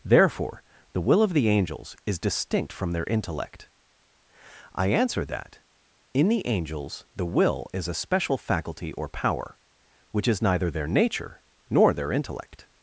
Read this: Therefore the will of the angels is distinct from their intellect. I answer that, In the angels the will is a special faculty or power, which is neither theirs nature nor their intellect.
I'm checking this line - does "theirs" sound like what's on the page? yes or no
no